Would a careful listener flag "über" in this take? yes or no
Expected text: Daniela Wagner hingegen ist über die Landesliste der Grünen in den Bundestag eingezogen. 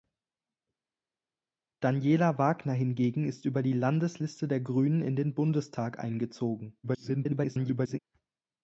no